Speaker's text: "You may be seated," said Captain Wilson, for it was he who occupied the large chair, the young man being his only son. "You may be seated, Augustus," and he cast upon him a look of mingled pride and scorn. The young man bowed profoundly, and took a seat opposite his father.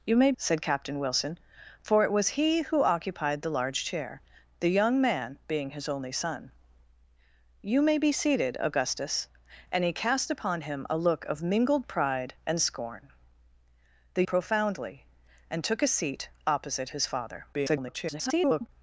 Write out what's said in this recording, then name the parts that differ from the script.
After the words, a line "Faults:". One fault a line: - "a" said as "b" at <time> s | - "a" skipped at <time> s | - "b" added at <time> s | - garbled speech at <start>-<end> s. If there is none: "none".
"You may," said Captain Wilson, for it was he who occupied the large chair, the young man being his only son. "You may be seated, Augustus," and he cast upon him a look of mingled pride and scorn. The profoundly, and took a seat opposite his father. [garbled]
Faults:
- "be seated" skipped at 0.3 s
- "young man bowed" skipped at 14.2 s
- garbled speech at 17.5-18.7 s